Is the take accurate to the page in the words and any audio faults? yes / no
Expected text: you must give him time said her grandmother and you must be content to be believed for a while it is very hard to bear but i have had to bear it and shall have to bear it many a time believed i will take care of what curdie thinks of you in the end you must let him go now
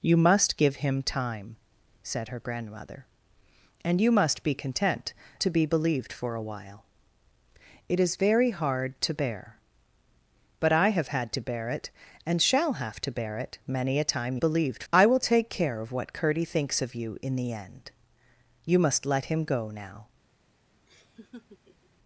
no